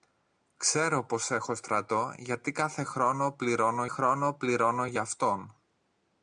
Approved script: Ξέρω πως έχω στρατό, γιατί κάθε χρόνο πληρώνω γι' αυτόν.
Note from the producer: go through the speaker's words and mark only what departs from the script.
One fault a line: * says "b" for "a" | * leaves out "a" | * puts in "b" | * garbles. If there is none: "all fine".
* puts in "χρόνο πληρώνω"